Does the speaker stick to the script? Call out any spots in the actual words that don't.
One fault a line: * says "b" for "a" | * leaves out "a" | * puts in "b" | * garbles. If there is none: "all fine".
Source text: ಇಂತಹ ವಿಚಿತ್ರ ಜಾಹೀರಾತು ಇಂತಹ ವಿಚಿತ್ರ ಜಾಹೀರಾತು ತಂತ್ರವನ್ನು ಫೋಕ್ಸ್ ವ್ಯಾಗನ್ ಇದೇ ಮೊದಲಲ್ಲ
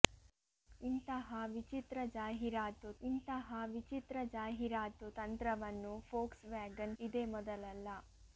all fine